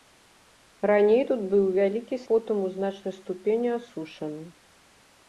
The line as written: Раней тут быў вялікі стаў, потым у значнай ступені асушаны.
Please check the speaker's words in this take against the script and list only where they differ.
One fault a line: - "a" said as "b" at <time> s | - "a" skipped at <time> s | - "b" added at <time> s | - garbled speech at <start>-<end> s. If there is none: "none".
- "стаў" skipped at 2.2 s